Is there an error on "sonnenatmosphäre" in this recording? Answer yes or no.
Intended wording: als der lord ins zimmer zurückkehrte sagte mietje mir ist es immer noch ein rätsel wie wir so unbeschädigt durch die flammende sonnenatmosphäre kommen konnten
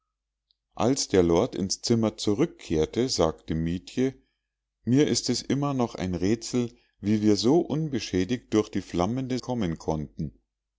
yes